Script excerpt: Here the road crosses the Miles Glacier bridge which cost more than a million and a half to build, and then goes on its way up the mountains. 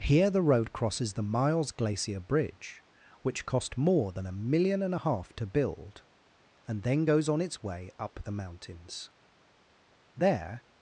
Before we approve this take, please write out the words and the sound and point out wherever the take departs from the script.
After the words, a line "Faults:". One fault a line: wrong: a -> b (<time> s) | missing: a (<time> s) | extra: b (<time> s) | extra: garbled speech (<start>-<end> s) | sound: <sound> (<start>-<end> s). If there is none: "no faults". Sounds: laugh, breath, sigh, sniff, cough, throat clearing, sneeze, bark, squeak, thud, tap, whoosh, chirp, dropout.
Here the road crosses the Miles Glacier bridge which cost more than a million and a half to build, and then goes on its way up the mountains. There
Faults:
extra: There (10.2 s)